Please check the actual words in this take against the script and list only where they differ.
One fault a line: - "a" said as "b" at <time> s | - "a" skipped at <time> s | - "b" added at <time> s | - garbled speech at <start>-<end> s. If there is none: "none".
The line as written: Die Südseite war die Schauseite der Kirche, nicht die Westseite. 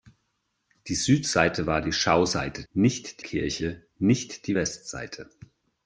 - "der" said as "nicht" at 2.7 s